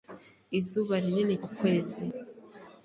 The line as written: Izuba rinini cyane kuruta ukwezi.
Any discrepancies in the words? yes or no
yes